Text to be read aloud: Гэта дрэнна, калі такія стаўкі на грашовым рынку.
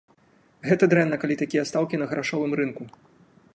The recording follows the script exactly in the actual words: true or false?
true